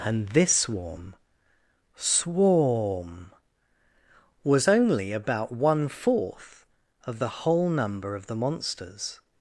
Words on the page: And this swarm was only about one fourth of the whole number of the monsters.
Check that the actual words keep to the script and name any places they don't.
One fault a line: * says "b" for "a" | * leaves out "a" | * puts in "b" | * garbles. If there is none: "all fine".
* puts in "swarm"